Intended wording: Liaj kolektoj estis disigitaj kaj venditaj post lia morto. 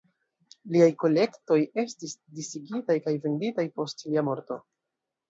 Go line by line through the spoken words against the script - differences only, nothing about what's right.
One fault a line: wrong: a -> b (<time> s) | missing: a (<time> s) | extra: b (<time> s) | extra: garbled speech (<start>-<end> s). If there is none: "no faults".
no faults